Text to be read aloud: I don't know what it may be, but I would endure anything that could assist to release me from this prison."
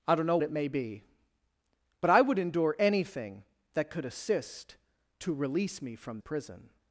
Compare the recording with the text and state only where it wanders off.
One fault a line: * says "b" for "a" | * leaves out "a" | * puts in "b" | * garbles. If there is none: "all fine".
* leaves out "what"
* leaves out "this"